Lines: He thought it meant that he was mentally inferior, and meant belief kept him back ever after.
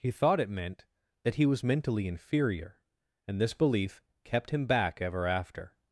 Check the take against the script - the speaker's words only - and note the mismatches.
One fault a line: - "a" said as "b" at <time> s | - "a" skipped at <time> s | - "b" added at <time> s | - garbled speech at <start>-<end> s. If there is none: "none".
- "meant" said as "this" at 3.4 s